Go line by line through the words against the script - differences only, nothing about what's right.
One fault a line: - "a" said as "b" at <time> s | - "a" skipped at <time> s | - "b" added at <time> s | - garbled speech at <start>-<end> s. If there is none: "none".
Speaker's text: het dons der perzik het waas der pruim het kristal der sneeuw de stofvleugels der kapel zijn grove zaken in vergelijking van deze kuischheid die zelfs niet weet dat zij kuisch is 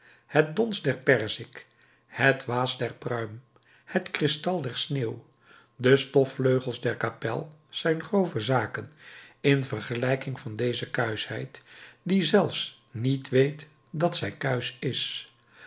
none